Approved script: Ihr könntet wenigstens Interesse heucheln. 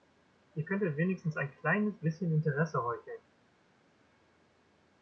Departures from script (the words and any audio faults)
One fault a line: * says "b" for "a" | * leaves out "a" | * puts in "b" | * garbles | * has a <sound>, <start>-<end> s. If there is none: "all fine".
* puts in "ein kleines bisschen"